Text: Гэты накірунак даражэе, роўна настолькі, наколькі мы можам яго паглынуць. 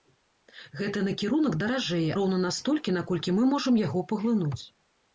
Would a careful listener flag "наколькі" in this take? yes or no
no